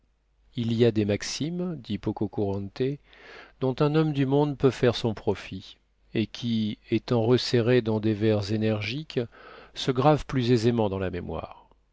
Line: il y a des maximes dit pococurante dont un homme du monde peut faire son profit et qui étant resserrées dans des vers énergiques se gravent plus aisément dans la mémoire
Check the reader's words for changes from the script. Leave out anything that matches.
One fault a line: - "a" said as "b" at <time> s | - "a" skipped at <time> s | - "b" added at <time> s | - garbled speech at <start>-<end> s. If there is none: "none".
none